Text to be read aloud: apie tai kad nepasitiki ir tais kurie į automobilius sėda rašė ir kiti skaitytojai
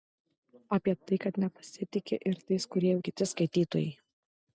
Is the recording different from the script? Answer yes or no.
yes